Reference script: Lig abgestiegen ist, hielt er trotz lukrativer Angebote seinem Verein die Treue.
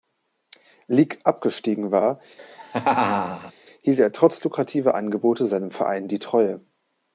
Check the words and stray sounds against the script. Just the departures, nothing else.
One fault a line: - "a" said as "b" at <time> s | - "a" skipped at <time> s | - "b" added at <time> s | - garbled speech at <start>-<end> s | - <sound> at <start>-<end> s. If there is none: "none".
- "ist" said as "war" at 1.9 s
- laugh at 2.4-3.5 s